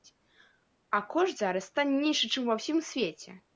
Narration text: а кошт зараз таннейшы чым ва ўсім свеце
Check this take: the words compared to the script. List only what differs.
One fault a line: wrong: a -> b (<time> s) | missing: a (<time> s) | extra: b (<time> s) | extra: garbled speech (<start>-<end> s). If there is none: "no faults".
no faults